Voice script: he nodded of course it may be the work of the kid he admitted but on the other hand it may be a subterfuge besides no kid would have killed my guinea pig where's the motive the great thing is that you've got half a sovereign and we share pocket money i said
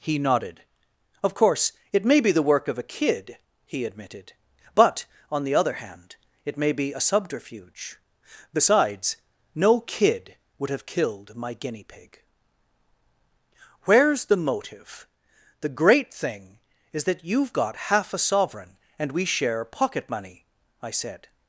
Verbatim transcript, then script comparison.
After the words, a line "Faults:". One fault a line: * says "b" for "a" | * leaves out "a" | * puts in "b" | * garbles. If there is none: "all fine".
he nodded of course it may be the work of a kid he admitted but on the other hand it may be a subterfuge besides no kid would have killed my guinea pig where's the motive the great thing is that you've got half a sovereign and we share pocket money i said
Faults:
* says "a" for "the"